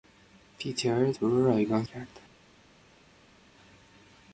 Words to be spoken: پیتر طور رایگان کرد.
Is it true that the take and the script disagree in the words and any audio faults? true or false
false